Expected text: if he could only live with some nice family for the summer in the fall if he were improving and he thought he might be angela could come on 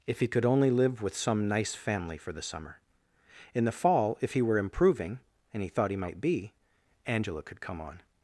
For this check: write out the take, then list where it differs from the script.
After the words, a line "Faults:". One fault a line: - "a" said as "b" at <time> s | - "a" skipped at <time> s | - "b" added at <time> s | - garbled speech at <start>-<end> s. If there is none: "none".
if he could only live with some nice family for the summer in the fall if he were improving and he thought he might be angela could come on
Faults:
none